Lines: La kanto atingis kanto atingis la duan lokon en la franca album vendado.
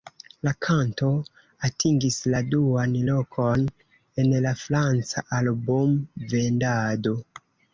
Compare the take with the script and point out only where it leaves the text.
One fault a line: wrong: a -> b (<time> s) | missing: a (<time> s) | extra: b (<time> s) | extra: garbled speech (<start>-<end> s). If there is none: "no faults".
missing: kanto atingis (2.2 s)